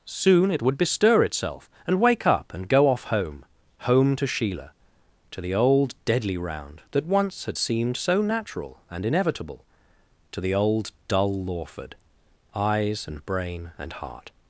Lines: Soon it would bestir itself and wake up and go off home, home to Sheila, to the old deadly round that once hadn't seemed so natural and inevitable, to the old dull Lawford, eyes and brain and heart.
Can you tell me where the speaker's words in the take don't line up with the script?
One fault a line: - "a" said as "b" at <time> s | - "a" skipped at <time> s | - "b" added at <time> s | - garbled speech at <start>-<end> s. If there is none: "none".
- "hadn't" said as "had" at 7.4 s